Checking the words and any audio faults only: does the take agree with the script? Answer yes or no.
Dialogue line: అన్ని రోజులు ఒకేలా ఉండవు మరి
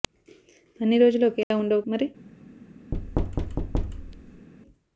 no